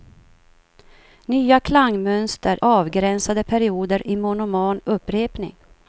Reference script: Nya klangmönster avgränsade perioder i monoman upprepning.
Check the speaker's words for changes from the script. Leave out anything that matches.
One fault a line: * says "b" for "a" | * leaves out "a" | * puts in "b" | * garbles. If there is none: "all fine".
all fine